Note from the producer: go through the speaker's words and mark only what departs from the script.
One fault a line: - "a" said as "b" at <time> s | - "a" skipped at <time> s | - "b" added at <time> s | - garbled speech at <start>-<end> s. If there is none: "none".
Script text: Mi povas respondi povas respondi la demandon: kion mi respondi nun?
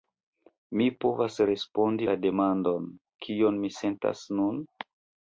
- "povas respondi" skipped at 2.1 s
- "respondi" said as "sentas" at 3.8 s